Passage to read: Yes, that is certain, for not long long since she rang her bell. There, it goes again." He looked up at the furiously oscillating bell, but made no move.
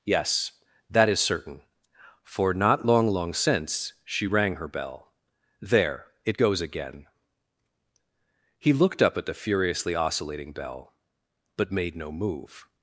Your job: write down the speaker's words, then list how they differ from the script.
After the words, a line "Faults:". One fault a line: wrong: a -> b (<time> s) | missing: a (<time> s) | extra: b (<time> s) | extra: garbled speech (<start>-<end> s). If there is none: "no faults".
Yes, that is certain, for not long long since she rang her bell. There, it goes again." He looked up at the furiously oscillating bell, but made no move.
Faults:
no faults